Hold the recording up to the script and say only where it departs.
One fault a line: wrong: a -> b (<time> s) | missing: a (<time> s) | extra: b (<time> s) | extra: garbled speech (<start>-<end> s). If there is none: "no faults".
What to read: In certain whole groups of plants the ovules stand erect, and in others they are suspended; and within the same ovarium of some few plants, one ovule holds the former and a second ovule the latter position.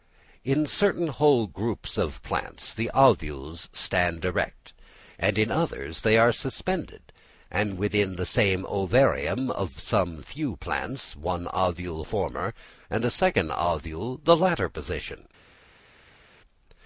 missing: holds the (12.0 s)